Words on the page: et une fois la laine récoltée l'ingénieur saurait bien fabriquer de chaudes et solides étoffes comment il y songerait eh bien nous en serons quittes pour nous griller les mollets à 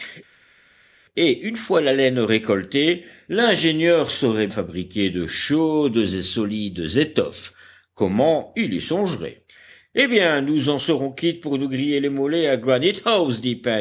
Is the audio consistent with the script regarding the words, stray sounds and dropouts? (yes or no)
no